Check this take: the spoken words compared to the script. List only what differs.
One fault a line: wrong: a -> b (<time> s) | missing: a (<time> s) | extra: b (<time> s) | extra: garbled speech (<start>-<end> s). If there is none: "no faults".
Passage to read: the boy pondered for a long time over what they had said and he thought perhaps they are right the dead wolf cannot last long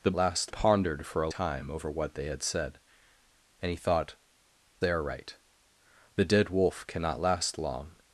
wrong: boy -> last (0.2 s)
missing: long (1.3 s)
missing: perhaps (4.2 s)